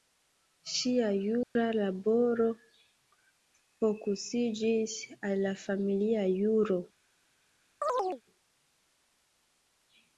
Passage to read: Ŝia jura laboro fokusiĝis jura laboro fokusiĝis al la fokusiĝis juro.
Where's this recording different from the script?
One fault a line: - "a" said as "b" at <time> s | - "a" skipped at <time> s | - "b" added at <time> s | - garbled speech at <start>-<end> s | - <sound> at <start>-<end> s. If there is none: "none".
- dropout at 1.4-1.6 s
- "jura laboro fokusiĝis" skipped at 5.0 s
- "fokusiĝis" said as "familia" at 5.7 s
- chirp at 7.8-8.2 s